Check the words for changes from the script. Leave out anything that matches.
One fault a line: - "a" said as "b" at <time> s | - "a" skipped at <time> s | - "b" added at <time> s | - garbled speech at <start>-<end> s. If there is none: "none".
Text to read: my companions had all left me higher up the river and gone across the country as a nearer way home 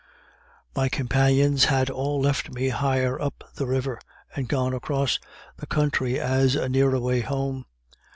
none